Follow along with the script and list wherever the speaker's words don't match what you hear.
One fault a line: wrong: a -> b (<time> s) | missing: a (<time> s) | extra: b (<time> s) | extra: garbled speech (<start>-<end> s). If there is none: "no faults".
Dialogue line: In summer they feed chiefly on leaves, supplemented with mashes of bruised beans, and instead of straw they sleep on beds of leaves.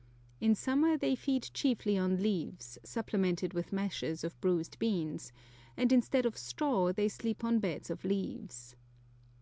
no faults